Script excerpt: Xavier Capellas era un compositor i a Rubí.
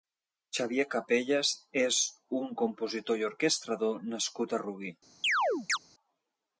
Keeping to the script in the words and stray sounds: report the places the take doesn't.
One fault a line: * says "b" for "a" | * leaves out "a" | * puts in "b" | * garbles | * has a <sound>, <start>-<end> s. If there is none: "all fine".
* says "és" for "era"
* puts in "orquestrador nascut"
* has a chirp, 5.2-5.8 s